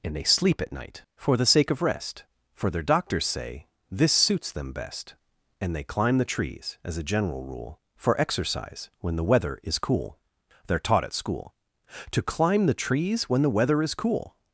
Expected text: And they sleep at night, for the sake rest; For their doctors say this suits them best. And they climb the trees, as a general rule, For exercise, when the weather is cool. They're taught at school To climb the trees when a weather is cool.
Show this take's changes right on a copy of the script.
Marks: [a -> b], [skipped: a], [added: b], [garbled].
And they sleep at night, for the sake [added: of] rest; For their doctors say this suits them best. And they climb the trees, as a general rule, For exercise, when the weather is cool. They're taught at school To climb the trees when [a -> the] weather is cool.